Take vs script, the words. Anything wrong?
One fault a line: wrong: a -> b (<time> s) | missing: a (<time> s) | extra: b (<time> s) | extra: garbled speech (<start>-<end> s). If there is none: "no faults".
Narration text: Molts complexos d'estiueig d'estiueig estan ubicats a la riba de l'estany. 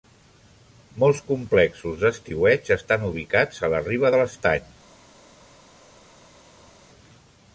missing: d'estiueig (2.7 s)